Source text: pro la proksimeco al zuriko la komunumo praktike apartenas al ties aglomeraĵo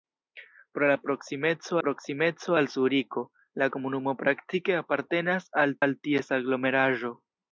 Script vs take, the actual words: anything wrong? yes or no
yes